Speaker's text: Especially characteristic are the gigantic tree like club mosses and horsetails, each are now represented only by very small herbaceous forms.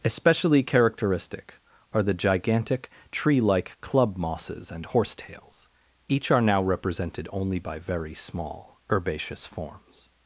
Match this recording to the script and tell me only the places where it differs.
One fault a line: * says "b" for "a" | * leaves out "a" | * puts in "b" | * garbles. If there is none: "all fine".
all fine